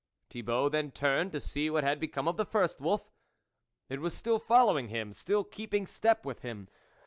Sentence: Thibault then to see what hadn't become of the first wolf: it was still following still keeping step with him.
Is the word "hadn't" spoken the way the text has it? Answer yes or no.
no